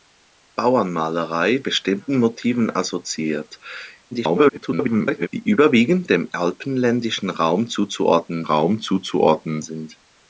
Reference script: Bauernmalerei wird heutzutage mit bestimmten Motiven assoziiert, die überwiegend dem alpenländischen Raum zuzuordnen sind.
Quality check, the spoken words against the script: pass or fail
fail